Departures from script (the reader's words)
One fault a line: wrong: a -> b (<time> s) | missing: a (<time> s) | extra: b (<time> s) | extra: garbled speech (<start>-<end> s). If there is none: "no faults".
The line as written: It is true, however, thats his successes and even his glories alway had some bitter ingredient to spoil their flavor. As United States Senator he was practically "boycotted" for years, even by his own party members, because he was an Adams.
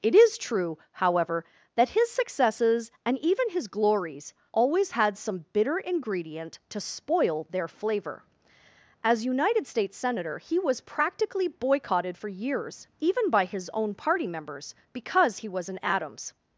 wrong: thats -> that (1.8 s)
wrong: alway -> always (4.5 s)